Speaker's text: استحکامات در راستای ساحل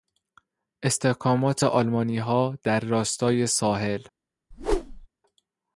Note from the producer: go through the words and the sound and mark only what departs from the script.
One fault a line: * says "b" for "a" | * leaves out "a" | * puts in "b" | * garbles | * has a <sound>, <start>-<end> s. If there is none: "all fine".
* puts in "آلمانیها"
* has a whoosh, 4.5-5.1 s